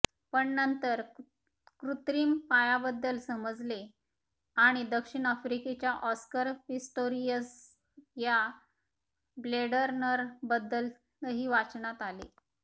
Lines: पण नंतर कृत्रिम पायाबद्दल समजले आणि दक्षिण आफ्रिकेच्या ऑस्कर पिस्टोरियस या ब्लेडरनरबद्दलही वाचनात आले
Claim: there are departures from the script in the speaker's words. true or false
false